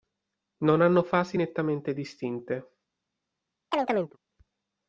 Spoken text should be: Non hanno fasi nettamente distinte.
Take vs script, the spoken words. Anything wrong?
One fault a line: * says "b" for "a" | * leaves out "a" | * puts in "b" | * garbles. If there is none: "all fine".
all fine